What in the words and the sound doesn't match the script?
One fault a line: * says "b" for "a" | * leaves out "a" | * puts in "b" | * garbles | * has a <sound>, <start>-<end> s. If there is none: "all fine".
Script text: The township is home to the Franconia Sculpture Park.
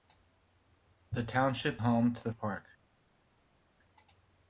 * leaves out "is"
* leaves out "Franconia Sculpture"